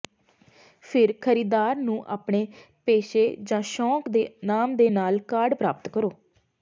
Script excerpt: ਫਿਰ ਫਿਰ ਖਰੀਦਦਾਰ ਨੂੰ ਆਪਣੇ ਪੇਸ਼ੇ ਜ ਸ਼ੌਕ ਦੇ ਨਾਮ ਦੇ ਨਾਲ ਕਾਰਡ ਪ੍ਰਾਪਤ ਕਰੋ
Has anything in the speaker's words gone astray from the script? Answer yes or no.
yes